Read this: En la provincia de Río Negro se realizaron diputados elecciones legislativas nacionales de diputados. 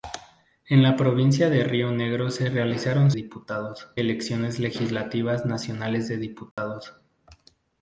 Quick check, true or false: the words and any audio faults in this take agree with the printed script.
false